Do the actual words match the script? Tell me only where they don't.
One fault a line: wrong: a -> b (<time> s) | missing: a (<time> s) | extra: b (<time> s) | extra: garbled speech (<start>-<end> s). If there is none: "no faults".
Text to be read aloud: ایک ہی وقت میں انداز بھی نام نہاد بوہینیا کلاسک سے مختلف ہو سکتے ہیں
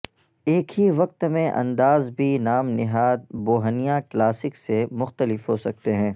no faults